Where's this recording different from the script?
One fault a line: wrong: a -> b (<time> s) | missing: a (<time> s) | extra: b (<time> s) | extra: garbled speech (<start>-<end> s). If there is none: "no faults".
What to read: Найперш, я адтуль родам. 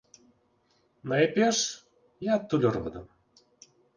no faults